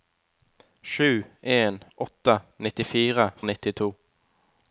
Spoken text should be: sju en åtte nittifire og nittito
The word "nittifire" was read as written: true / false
true